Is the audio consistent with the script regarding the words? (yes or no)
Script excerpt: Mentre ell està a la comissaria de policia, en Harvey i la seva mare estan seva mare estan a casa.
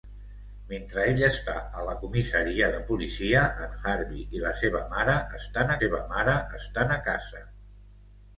yes